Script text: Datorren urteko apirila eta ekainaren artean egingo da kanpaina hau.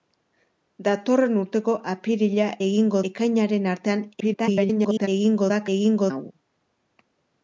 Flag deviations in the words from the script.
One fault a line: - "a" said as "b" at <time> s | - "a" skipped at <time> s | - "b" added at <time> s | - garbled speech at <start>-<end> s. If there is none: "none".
- "eta" said as "egingo" at 2.7 s
- garbled speech at 4.2-5.1 s
- "kanpaina" said as "egingo" at 5.8 s